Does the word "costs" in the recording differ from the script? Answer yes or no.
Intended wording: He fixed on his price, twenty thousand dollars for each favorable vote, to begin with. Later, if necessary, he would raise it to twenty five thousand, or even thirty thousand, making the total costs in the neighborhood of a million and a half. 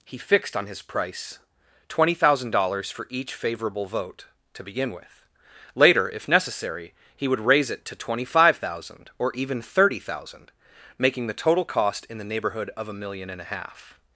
yes